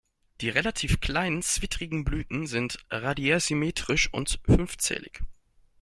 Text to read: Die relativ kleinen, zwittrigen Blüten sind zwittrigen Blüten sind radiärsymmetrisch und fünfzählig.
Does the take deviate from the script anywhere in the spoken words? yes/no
yes